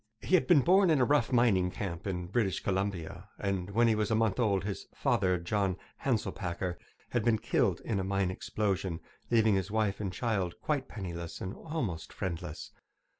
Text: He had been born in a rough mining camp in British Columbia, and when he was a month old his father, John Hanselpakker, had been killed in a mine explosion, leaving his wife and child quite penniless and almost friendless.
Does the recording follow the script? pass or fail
pass